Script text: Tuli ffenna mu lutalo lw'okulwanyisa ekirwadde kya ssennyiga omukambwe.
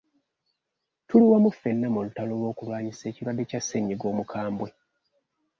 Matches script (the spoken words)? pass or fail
fail